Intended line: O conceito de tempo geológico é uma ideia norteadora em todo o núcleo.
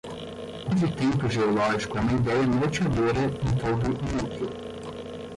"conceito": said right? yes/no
no